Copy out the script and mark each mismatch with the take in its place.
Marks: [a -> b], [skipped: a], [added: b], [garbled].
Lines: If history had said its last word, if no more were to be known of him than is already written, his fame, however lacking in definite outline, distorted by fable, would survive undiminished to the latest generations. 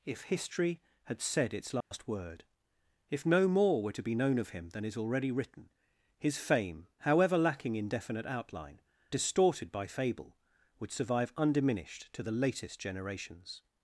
If history had said its last word, if no more were to be known of him than is already written, his fame, however lacking in definite outline, distorted by fable, would survive undiminished to the latest generations.